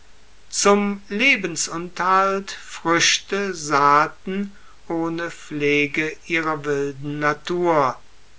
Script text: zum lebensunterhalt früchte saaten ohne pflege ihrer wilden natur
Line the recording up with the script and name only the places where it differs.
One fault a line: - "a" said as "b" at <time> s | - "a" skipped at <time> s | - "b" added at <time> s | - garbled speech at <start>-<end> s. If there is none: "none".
none